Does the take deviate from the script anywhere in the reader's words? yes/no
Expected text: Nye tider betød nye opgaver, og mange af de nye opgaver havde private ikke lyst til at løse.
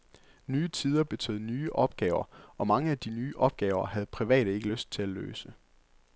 no